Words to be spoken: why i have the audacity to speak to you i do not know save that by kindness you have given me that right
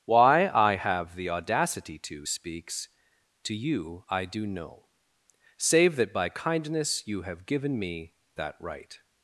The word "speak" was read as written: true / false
false